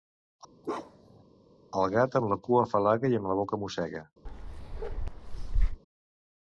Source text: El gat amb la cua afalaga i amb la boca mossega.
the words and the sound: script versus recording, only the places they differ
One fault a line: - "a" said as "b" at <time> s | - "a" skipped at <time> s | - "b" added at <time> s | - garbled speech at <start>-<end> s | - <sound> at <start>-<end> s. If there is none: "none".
- bark at 0.6-1.2 s
- bark at 4.2-5.8 s